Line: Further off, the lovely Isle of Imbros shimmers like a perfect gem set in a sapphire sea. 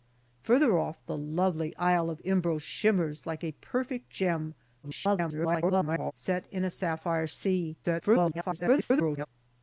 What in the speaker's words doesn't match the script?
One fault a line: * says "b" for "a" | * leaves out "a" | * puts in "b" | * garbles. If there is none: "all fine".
* garbles
* garbles